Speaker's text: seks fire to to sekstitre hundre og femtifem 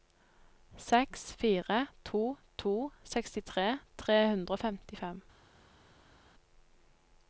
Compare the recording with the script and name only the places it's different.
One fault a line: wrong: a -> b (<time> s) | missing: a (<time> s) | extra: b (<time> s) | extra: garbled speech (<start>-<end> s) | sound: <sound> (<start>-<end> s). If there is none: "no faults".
extra: tre (4.0 s)